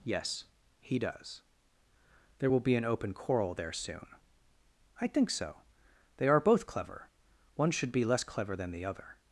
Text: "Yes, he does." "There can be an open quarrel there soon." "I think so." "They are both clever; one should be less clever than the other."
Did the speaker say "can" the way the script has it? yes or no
no